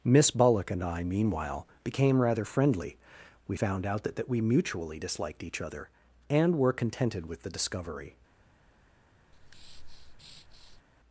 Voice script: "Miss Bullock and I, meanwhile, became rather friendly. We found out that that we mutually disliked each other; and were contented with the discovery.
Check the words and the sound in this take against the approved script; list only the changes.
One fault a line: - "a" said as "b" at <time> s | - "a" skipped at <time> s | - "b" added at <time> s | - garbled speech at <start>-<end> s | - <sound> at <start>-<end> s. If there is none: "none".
- breath at 9.3-10.8 s